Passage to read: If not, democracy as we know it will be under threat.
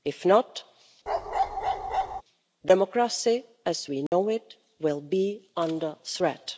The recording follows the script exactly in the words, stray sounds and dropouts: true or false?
false